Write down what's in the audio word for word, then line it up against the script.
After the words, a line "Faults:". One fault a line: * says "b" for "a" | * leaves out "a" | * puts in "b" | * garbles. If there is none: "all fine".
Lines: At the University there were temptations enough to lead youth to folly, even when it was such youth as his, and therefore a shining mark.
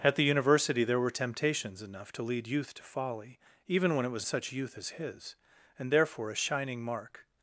At the University there were temptations enough to lead youth to folly, even when it was such youth as his, and therefore a shining mark.
Faults:
all fine